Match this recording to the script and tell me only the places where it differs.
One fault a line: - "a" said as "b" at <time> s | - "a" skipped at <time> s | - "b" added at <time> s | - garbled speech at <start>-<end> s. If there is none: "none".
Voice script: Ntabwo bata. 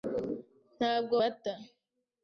none